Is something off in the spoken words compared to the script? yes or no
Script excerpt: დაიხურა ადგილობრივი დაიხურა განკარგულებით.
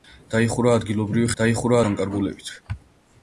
no